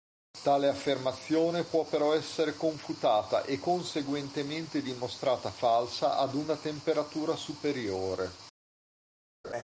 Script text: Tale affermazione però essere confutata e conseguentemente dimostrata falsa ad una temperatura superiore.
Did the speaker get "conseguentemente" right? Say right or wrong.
right